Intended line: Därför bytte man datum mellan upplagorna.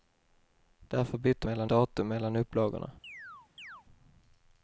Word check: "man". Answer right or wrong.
wrong